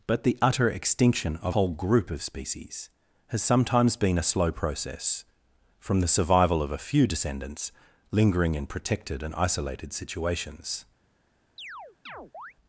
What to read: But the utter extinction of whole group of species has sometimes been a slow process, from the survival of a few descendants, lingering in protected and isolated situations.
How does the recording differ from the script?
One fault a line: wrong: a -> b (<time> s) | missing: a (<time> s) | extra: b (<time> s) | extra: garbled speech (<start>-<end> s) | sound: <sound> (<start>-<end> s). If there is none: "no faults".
sound: chirp (11.6-12.5 s)